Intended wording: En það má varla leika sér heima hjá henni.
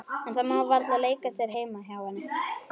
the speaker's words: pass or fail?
pass